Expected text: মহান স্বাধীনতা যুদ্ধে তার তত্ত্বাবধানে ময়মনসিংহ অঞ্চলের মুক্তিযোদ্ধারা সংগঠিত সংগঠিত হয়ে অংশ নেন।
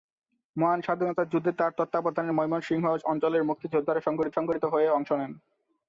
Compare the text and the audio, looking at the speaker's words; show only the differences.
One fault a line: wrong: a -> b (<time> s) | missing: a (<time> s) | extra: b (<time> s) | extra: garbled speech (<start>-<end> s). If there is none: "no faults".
no faults